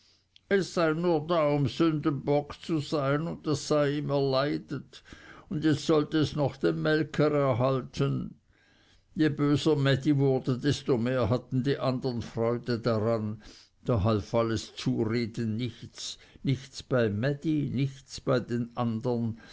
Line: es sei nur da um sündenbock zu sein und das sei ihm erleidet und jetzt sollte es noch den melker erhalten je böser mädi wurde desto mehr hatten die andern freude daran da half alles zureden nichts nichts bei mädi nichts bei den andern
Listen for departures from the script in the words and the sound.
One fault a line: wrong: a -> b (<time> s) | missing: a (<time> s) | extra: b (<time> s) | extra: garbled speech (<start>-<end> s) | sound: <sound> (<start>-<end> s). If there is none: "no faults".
no faults